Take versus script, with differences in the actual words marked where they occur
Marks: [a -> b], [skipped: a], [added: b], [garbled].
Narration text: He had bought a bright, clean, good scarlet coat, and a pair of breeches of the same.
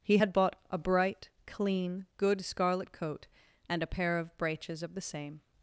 He had bought a bright, clean, good scarlet coat, and a pair of breeches of the same.